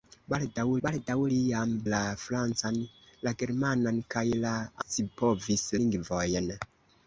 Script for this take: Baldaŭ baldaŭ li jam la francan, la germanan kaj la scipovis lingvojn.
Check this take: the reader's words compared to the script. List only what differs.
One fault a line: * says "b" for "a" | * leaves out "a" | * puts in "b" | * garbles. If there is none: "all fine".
all fine